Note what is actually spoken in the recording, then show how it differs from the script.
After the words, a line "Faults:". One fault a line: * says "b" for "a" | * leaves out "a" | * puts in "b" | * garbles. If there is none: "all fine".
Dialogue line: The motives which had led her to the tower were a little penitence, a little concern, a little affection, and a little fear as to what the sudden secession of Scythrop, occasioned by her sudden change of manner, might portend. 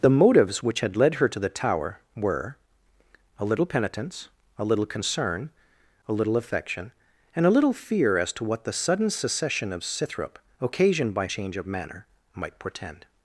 The motives which had led her to the tower were a little penitence, a little concern, a little affection, and a little fear as to what the sudden secession of Scythrop, occasioned by change of manner, might portend.
Faults:
* leaves out "her sudden"